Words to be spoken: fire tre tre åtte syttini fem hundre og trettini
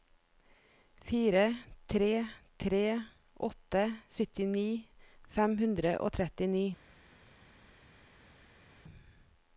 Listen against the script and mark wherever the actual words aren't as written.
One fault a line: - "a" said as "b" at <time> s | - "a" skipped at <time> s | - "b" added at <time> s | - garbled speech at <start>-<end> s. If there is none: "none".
none